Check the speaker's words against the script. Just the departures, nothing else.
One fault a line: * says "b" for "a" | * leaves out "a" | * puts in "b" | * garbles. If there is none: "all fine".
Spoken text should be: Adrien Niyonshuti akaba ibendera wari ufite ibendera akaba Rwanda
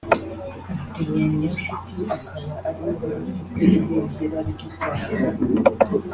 * says "ariwe" for "ibendera"
* says "ry'u" for "akaba"